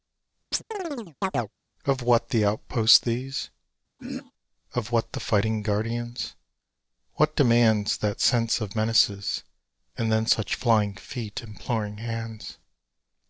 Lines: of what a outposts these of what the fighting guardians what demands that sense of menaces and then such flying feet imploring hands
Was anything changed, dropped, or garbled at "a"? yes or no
yes